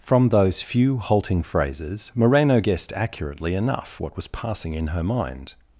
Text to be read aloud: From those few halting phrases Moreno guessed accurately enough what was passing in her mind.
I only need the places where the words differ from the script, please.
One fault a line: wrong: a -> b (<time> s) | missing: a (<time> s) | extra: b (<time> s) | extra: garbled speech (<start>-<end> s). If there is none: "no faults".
no faults